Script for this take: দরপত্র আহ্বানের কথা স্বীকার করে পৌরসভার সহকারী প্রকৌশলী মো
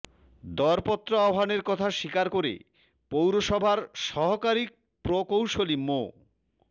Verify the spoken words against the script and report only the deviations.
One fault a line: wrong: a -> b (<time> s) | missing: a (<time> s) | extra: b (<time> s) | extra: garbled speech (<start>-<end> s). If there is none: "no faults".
no faults